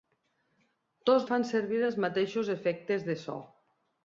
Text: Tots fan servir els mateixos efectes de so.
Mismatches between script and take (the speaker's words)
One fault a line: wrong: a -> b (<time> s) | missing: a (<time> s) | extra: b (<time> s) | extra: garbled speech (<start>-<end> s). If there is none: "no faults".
no faults